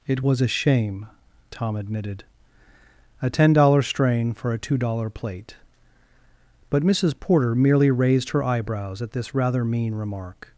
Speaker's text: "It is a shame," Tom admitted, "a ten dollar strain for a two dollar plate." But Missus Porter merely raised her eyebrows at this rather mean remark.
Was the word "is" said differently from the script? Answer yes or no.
yes